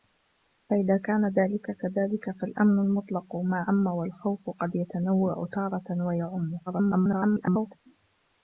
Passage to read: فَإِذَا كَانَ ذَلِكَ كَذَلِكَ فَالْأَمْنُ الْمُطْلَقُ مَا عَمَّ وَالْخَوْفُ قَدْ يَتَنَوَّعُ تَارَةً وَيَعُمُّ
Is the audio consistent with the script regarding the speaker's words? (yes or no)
no